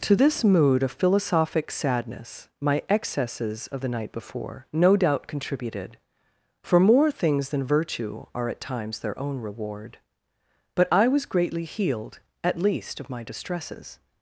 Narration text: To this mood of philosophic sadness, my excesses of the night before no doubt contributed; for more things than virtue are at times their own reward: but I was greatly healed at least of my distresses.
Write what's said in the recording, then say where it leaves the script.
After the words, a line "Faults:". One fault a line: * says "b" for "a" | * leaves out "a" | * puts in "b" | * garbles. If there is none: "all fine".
To this mood of philosophic sadness, my excesses of the night before no doubt contributed; for more things than virtue are at times their own reward: but I was greatly healed at least of my distresses.
Faults:
all fine